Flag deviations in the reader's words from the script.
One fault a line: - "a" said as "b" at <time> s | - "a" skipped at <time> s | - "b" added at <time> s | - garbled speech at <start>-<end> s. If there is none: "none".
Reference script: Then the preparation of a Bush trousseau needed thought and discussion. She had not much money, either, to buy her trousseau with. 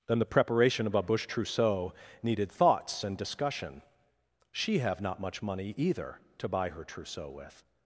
- "thought" said as "thoughts" at 2.5 s
- "had" said as "have" at 4.8 s